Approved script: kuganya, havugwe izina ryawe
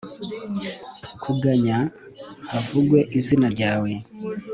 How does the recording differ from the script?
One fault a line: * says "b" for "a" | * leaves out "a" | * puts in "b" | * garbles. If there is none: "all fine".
all fine